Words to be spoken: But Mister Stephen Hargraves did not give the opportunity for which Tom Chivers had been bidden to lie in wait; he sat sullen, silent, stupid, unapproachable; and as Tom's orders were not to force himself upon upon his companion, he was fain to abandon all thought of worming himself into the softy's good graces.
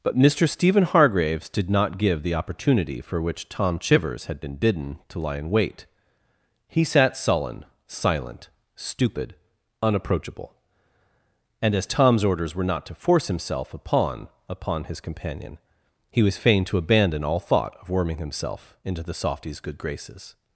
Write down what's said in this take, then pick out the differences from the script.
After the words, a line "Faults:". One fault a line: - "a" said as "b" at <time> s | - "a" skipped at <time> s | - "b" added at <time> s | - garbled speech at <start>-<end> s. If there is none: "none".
But Mister Stephen Hargraves did not give the opportunity for which Tom Chivers had been bidden to lie in wait; he sat sullen, silent, stupid, unapproachable; and as Tom's orders were not to force himself upon upon his companion, he was fain to abandon all thought of worming himself into the softy's good graces.
Faults:
none